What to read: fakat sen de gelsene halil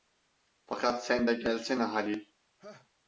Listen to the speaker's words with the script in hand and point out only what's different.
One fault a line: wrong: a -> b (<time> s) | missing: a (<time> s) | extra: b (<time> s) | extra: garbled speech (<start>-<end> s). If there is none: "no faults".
no faults